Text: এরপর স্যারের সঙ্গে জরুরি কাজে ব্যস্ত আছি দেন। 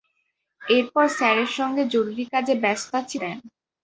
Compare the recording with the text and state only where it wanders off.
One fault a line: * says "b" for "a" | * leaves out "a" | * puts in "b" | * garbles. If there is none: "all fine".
all fine